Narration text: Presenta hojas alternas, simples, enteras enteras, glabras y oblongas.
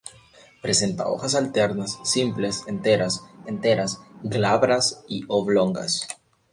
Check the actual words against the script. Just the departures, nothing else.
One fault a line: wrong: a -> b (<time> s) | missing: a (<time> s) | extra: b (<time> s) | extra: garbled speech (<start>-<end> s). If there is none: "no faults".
no faults